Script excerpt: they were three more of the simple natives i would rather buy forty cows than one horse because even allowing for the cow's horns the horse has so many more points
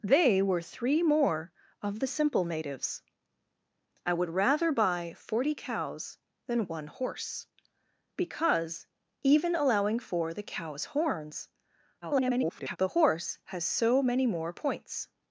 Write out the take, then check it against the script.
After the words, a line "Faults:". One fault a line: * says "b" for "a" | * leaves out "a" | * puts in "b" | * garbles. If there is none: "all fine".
they were three more of the simple natives i would rather buy forty cows than one horse because even allowing for the cow's horns [garbled] the horse has so many more points
Faults:
* garbles